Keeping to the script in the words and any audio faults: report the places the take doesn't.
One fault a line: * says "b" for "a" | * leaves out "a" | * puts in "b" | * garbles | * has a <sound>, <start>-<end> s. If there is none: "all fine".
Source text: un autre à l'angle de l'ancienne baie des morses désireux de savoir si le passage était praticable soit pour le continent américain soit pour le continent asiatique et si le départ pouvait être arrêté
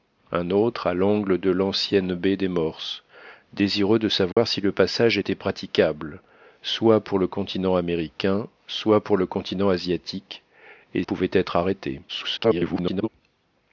* has a dropout, 4.3-4.4 s
* leaves out "si le départ"
* garbles